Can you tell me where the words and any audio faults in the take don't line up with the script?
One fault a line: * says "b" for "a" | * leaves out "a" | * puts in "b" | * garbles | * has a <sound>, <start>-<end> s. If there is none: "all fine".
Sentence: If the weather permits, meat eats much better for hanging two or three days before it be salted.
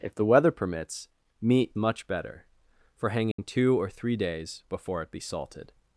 * leaves out "eats"
* has a dropout, 3.3-3.4 s